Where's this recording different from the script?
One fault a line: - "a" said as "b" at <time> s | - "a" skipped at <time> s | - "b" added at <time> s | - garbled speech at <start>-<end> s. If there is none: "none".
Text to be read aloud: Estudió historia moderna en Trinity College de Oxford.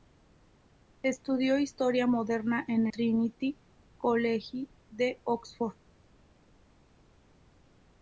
none